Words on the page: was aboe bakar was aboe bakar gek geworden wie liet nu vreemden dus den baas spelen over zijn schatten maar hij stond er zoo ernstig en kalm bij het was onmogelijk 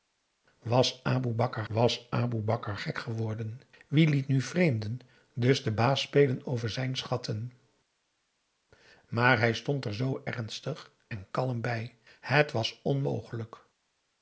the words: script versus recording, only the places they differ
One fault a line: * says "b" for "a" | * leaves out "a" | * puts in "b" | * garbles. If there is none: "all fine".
all fine